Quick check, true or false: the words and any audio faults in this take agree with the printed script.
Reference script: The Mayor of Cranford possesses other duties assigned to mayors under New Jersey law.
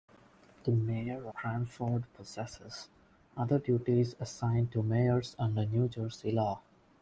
false